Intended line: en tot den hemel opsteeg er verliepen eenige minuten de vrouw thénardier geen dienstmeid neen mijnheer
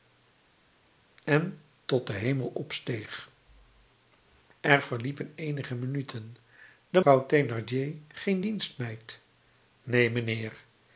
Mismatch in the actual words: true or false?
false